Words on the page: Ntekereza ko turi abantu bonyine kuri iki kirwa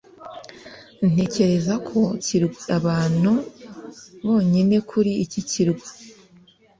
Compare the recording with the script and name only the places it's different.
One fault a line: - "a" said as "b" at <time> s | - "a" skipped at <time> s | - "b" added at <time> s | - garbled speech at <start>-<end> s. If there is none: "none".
- "turi" said as "kirwa" at 2.2 s